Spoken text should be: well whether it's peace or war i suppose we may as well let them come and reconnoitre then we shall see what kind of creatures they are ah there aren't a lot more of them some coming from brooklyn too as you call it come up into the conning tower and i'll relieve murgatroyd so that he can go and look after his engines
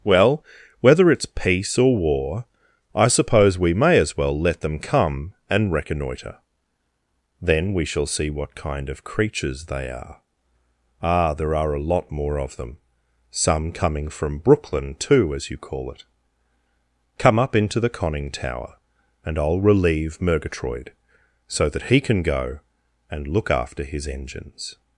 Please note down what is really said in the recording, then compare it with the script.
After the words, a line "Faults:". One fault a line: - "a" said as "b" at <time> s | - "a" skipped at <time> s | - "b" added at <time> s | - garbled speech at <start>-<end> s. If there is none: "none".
well whether it's peace or war i suppose we may as well let them come and reconnoitre then we shall see what kind of creatures they are ah there are a lot more of them some coming from brooklyn too as you call it come up into the conning tower and i'll relieve murgatroyd so that he can go and look after his engines
Faults:
- "aren't" said as "are" at 11.5 s